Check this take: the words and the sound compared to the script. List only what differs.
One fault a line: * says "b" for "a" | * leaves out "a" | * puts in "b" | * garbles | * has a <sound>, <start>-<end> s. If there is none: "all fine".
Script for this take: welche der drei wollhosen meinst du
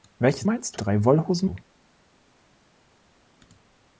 * says "meinst" for "der"
* leaves out "meinst"